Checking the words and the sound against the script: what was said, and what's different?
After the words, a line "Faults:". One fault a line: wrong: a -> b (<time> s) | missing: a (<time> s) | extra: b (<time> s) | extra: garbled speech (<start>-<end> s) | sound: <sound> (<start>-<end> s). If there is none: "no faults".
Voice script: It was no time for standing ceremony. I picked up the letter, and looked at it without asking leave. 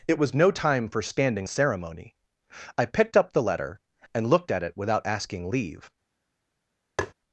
It was no time for standing ceremony. I picked up the letter, and looked at it without asking leave.
Faults:
sound: tap (7.0-7.1 s)